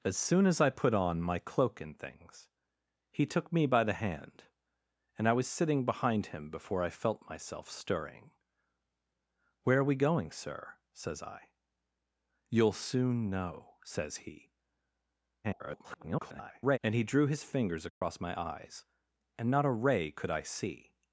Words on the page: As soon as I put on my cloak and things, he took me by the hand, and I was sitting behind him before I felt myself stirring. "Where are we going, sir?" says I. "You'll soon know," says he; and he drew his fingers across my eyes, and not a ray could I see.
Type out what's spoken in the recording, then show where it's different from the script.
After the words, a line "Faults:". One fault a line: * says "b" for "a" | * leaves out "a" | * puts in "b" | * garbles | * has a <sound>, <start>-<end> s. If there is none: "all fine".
As soon as I put on my cloak and things, he took me by the hand, and I was sitting behind him before I felt myself stirring. "Where are we going, sir?" says I. "You'll soon know," says he; [garbled] and he drew his fingers across my eyes, and not a ray could I see.
Faults:
* garbles
* has a dropout, 17.9-18.0 s